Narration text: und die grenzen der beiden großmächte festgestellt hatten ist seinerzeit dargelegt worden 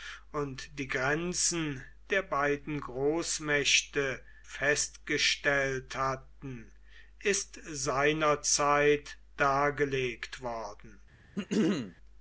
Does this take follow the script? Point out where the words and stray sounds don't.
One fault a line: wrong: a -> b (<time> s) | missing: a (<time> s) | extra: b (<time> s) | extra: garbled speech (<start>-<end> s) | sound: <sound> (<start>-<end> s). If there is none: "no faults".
sound: throat clearing (11.4-12.0 s)